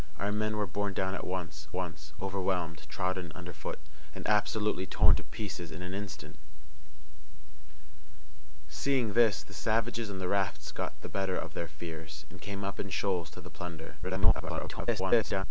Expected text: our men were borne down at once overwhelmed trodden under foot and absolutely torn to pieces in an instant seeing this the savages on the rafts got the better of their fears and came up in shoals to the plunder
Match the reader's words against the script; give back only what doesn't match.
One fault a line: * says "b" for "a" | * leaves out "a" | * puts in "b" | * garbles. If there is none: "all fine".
* puts in "once"
* garbles